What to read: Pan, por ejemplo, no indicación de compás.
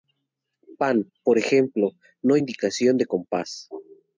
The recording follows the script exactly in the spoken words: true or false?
true